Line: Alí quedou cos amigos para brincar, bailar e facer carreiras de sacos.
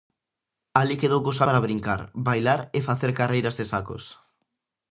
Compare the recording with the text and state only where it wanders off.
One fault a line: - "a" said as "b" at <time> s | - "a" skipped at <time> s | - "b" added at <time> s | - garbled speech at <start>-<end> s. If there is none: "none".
- "amigos" skipped at 1.4 s